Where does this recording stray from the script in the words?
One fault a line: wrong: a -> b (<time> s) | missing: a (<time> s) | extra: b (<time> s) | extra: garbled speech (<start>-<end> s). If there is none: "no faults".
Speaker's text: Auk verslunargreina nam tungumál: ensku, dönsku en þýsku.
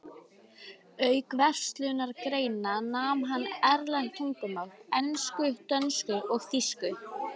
extra: hann erlend (3.3 s)
wrong: en -> og (6.4 s)